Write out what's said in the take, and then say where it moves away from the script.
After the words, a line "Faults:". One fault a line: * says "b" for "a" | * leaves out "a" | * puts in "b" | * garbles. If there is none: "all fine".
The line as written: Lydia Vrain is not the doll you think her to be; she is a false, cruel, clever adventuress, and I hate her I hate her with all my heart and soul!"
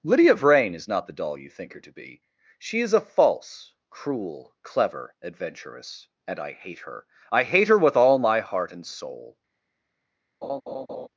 Lydia Vrain is not the doll you think her to be; she is a false, cruel, clever adventuress, and I hate her I hate her with all my heart and soul!"
Faults:
all fine